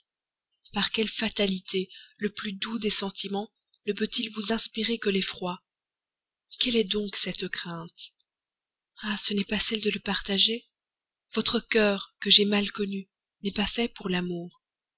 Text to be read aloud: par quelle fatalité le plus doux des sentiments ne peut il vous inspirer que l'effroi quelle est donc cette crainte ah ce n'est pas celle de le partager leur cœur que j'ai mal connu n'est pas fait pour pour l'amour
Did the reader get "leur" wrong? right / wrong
wrong